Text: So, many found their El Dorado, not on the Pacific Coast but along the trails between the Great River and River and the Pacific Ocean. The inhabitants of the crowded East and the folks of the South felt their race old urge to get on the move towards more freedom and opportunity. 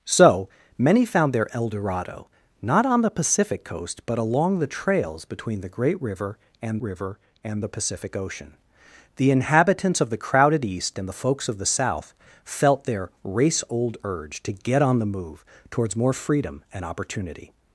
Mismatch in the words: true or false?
false